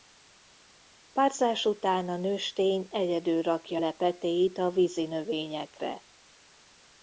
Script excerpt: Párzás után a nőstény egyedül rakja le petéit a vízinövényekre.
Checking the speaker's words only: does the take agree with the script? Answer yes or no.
yes